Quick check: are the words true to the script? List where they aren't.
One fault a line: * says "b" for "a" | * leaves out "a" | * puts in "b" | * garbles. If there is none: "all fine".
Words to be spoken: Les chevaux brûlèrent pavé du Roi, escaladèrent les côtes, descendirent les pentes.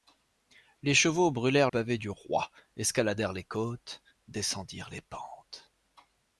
all fine